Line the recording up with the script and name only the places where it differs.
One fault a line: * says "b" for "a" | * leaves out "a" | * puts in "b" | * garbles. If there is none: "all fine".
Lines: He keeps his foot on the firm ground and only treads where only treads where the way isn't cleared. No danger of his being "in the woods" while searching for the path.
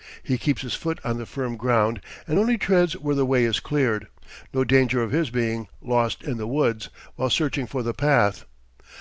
* leaves out "only treads where"
* says "is" for "isn't"
* puts in "lost"